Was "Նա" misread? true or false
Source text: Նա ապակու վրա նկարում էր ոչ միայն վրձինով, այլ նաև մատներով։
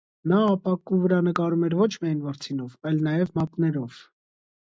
false